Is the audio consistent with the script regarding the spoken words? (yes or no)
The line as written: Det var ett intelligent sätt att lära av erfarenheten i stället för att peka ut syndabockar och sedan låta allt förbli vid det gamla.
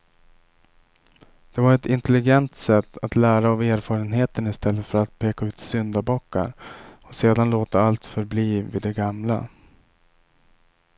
yes